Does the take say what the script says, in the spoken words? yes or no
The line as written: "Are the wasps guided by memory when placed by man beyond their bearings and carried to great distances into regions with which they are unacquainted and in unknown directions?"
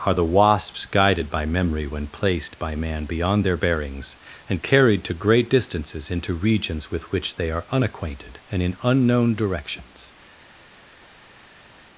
yes